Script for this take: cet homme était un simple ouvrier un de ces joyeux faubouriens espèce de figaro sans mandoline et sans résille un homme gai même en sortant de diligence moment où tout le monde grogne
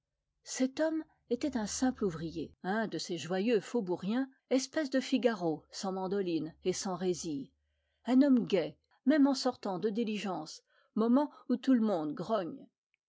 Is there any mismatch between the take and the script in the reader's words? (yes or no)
no